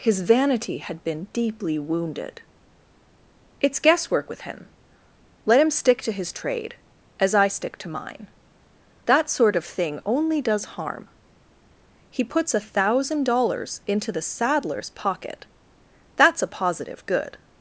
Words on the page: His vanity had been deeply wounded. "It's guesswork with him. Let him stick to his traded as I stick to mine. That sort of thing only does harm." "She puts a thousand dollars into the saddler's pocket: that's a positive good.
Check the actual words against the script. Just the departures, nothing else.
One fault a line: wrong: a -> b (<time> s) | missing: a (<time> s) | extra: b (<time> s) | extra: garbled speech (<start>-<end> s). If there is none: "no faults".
wrong: traded -> trade (6.3 s)
wrong: She -> He (12.1 s)